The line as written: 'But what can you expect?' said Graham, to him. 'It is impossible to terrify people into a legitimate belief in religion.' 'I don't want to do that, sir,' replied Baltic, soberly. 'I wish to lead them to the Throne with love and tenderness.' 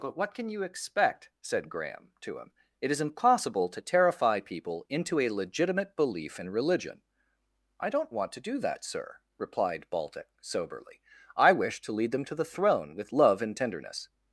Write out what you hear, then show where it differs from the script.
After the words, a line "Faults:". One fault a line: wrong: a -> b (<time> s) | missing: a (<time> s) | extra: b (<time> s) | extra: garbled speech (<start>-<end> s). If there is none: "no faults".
'But what can you expect?' said Graham, to him. 'It is impossible to terrify people into a legitimate belief in religion.' 'I don't want to do that, sir,' replied Baltic, soberly. 'I wish to lead them to the Throne with love and tenderness.'
Faults:
no faults